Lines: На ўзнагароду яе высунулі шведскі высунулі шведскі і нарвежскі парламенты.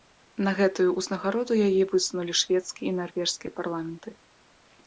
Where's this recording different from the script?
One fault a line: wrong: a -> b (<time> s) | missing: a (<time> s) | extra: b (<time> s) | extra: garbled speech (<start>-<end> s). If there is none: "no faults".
extra: гэтую (0.6 s)
missing: высунулі шведскі (2.8 s)